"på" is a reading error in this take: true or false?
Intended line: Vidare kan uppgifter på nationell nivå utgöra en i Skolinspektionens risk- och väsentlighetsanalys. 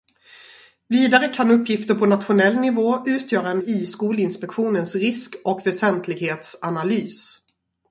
false